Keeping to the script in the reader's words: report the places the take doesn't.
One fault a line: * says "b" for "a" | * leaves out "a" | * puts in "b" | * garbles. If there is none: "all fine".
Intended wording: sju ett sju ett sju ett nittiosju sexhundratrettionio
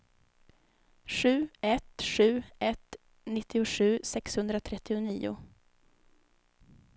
* leaves out "sju ett"